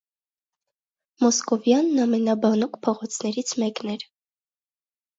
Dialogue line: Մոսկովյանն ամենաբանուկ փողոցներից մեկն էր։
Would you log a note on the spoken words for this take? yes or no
no